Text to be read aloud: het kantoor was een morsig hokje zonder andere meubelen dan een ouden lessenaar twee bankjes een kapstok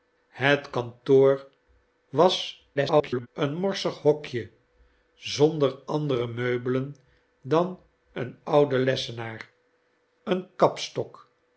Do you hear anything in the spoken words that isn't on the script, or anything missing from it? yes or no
yes